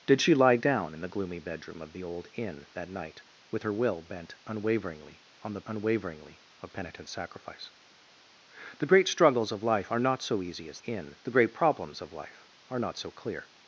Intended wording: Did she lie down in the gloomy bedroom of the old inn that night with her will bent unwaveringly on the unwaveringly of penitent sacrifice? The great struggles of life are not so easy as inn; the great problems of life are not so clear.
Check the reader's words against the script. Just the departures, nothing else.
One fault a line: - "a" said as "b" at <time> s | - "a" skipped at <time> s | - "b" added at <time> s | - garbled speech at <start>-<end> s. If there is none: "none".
none